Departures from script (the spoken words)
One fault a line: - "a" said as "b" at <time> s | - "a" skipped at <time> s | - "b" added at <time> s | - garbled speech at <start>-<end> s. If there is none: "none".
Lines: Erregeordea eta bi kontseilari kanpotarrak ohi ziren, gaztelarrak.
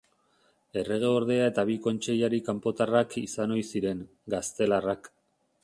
- "izan" added at 3.2 s